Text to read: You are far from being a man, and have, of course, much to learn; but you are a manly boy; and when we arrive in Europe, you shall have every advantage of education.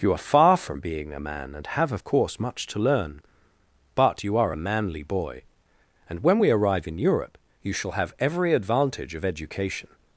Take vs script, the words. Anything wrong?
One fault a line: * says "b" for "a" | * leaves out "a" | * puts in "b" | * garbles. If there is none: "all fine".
all fine